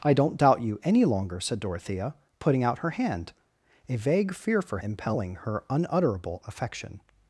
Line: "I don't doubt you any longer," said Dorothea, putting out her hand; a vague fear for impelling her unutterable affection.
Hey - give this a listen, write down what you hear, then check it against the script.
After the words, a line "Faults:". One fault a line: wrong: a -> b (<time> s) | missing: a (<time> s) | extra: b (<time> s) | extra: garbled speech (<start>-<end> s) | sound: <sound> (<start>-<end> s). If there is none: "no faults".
"I don't doubt you any longer," said Dorothea, putting out her hand; a vague fear for impelling her unutterable affection.
Faults:
no faults